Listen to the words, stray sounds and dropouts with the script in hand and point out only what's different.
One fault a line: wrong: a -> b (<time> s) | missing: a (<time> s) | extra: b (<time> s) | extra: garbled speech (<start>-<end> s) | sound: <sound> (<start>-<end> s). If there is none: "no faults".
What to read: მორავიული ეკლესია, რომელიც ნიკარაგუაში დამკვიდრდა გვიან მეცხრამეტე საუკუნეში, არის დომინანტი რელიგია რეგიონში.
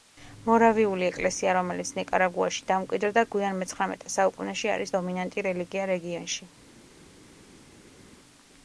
no faults